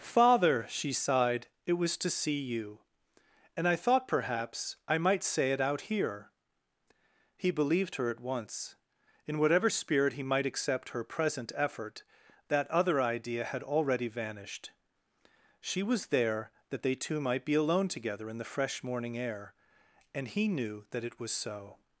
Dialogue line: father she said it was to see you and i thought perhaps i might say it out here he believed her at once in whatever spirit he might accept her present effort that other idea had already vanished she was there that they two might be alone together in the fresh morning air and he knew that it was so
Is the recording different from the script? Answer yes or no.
yes